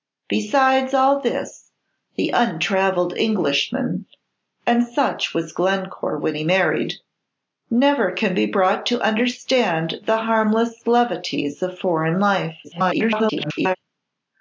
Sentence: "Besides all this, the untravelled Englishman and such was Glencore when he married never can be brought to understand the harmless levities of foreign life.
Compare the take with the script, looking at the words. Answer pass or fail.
fail